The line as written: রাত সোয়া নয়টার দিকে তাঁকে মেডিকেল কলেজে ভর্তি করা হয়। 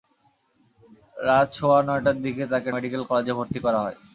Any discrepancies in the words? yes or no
no